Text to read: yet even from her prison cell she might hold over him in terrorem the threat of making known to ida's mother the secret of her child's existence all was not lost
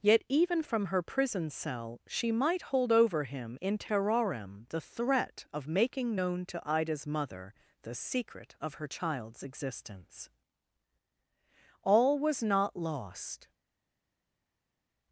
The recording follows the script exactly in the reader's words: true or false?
true